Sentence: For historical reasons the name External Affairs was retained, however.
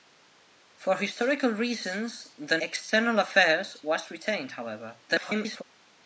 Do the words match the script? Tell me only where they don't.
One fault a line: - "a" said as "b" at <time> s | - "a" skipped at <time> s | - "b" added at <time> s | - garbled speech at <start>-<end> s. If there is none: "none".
- "name" skipped at 2.6 s
- garbled speech at 5.1-5.6 s